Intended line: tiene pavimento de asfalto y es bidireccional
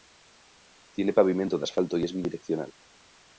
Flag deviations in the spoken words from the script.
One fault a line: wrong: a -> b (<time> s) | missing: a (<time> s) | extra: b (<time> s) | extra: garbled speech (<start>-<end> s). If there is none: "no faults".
no faults